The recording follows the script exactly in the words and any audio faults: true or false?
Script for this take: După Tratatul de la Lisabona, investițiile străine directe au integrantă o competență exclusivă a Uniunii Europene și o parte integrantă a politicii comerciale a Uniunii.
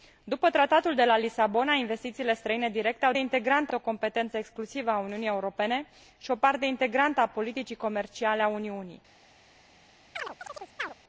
false